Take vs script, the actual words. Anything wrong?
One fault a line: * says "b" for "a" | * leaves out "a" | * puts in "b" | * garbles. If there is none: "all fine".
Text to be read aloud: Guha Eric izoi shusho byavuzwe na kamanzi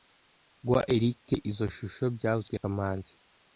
* leaves out "na"